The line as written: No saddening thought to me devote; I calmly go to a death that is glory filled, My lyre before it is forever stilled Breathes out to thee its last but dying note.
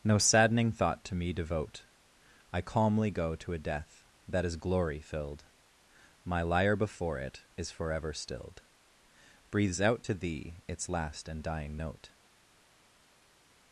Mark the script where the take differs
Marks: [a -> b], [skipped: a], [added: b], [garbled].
No saddening thought to me devote; I calmly go to a death that is glory filled, My lyre before it is forever stilled Breathes out to thee its last [but -> and] dying note.